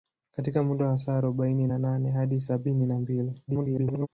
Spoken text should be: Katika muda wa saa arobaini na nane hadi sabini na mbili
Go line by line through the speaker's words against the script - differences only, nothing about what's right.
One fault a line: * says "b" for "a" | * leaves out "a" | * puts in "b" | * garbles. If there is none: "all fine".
* garbles